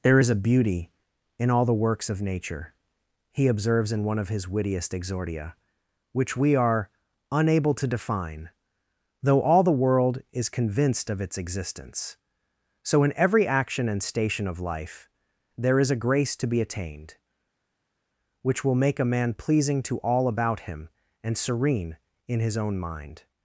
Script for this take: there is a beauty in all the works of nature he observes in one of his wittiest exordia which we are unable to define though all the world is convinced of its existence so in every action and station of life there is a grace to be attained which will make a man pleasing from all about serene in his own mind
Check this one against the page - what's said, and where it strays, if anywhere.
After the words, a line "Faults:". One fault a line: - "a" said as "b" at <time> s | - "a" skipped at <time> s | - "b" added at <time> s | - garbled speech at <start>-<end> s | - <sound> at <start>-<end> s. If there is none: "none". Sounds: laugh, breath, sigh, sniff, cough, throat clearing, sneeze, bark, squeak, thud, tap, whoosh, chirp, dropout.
there is a beauty in all the works of nature he observes in one of his wittiest exordia which we are unable to define though all the world is convinced of its existence so in every action and station of life there is a grace to be attained which will make a man pleasing to all about him and serene in his own mind
Faults:
- "from" said as "to" at 19.8 s
- "him and" added at 20.6 s